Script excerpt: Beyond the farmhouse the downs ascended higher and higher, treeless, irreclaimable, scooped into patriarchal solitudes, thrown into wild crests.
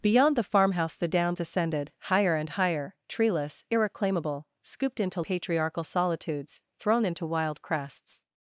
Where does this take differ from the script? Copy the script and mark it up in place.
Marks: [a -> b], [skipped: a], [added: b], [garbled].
Beyond the farmhouse the downs ascended higher and higher, treeless, irreclaimable, scooped into patriarchal solitudes, thrown into wild crests.